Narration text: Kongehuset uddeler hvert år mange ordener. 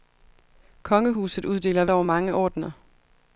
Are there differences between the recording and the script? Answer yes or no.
yes